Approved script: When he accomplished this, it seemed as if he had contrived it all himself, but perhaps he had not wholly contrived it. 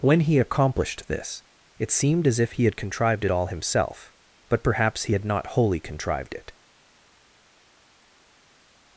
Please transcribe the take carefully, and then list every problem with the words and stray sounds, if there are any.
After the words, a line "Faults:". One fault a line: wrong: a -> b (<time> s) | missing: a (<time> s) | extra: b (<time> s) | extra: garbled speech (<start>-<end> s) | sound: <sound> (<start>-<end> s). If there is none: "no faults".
When he accomplished this, it seemed as if he had contrived it all himself, but perhaps he had not wholly contrived it.
Faults:
no faults